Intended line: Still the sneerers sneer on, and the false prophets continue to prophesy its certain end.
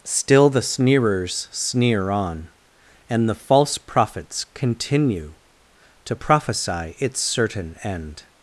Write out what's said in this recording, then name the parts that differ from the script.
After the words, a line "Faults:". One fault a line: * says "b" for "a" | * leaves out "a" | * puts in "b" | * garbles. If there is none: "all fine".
Still the sneerers sneer on, and the false prophets continue to prophesy its certain end.
Faults:
all fine